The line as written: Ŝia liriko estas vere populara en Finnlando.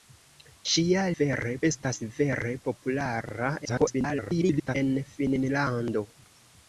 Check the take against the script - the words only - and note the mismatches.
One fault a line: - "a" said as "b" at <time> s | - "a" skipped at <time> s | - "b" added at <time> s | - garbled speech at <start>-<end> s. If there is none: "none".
- "liriko" said as "vere" at 1.2 s
- garbled speech at 3.6-4.8 s